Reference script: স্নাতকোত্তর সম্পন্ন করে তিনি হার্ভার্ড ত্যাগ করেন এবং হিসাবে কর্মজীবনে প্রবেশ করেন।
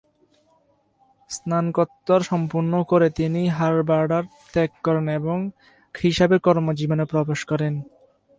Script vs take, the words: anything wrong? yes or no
no